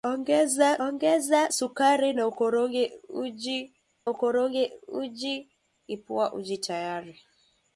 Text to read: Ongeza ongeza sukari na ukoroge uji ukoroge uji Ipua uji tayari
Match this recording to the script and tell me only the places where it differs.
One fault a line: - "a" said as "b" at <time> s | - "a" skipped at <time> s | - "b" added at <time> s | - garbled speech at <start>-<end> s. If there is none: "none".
none